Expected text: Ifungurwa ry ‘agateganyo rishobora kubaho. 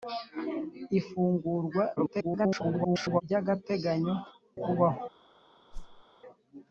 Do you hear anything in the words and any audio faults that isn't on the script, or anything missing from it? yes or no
yes